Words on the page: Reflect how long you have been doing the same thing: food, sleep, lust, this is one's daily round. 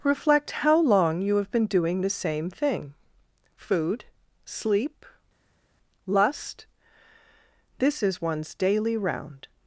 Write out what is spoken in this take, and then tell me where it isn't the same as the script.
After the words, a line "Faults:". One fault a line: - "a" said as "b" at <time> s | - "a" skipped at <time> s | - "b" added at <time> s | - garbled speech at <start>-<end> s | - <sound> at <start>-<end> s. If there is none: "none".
Reflect how long you have been doing the same thing: food, sleep, lust, this is one's daily round.
Faults:
none